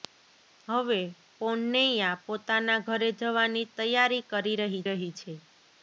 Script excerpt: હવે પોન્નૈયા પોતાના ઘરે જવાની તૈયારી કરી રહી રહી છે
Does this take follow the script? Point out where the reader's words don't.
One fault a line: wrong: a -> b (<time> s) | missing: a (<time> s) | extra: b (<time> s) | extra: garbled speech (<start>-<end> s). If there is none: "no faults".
no faults